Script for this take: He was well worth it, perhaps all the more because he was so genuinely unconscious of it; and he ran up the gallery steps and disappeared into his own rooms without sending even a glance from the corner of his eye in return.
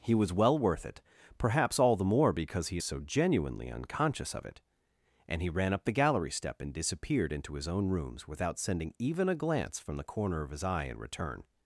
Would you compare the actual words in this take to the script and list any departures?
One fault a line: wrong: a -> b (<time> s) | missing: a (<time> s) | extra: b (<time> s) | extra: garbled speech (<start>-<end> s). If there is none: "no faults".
wrong: was -> is (2.7 s)
wrong: steps -> step (6.3 s)